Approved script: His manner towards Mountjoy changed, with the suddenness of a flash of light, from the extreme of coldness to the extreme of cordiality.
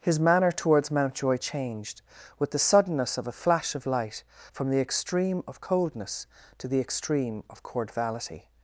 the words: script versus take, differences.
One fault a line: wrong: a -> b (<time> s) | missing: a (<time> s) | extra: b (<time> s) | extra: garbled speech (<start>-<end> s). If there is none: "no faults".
no faults